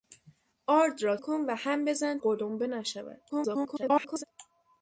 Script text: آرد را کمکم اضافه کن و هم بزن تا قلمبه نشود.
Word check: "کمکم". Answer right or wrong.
wrong